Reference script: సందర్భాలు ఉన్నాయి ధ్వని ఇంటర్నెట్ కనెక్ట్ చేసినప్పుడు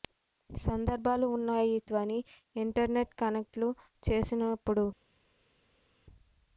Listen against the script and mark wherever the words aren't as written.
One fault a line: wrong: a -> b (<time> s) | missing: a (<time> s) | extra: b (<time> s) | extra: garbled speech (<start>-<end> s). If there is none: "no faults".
no faults